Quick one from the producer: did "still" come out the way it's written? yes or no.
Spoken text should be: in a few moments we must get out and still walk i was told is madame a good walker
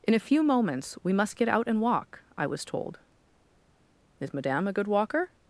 no